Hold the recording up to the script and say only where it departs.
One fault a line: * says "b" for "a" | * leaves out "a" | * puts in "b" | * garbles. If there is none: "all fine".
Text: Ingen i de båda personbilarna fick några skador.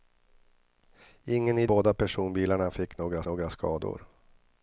* leaves out "de"
* puts in "några"